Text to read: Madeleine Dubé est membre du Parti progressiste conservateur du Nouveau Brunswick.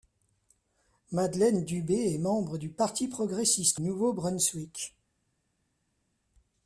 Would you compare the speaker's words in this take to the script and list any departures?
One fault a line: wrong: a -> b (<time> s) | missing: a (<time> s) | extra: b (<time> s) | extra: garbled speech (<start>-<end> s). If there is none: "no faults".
missing: conservateur du (3.8 s)